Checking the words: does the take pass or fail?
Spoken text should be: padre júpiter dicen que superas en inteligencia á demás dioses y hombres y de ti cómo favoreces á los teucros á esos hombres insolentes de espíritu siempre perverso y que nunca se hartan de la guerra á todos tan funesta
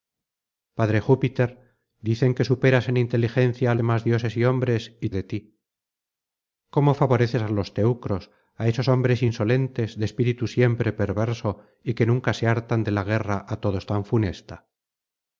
pass